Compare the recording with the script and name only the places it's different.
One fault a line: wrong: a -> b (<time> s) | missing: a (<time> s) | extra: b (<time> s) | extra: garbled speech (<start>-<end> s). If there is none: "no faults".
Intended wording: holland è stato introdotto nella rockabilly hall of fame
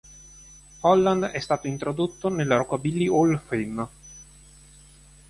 no faults